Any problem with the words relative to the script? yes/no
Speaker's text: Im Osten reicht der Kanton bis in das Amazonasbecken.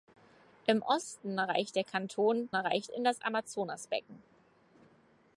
yes